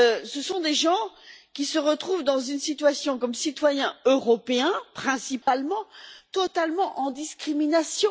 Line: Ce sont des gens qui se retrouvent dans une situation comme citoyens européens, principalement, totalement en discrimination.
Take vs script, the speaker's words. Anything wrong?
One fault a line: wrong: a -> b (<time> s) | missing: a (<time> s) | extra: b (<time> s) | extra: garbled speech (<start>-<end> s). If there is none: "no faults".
no faults